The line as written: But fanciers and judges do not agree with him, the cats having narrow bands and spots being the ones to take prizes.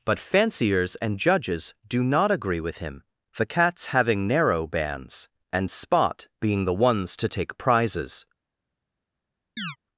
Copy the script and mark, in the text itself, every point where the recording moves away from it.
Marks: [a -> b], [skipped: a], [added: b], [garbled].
But fanciers and judges do not agree with him, the cats having narrow bands and [spots -> spot] being the ones to take prizes.